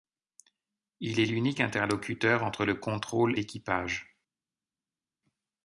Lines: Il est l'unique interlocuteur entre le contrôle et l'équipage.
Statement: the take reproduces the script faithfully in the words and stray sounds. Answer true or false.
false